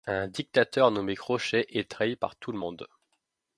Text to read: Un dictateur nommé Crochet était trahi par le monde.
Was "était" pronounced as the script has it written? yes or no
no